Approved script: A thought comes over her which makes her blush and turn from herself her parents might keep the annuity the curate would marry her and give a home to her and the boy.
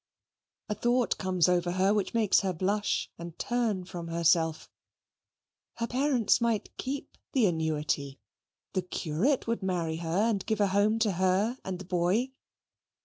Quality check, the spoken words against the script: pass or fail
pass